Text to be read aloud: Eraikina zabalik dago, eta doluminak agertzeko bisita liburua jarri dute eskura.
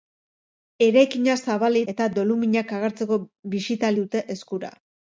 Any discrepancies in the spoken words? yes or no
yes